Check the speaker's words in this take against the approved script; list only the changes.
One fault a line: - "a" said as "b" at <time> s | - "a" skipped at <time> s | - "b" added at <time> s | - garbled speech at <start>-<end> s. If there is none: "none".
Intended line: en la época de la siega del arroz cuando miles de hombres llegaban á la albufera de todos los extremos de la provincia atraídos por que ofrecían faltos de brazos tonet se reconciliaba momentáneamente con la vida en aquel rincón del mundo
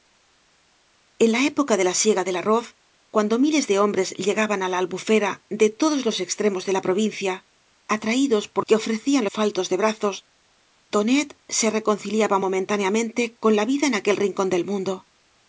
none